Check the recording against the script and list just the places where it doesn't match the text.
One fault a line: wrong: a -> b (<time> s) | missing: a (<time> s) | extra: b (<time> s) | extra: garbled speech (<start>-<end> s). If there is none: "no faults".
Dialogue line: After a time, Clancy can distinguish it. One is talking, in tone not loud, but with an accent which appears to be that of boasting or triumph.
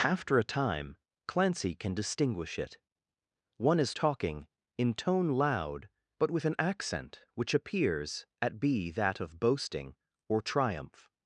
missing: not (5.3 s)
wrong: to -> at (8.4 s)